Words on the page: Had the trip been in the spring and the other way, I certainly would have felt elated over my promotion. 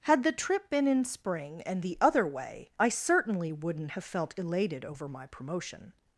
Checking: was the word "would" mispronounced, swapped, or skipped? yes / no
yes